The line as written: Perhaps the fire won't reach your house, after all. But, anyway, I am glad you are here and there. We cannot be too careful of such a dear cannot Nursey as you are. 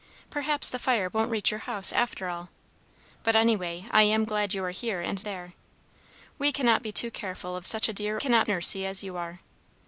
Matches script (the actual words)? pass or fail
pass